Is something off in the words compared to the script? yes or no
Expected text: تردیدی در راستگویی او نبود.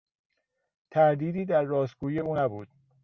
no